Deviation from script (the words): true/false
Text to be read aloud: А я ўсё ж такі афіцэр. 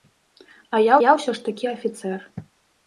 true